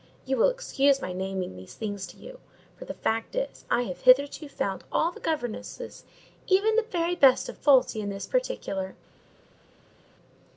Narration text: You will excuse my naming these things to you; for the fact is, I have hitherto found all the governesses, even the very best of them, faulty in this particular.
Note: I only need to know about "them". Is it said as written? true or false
false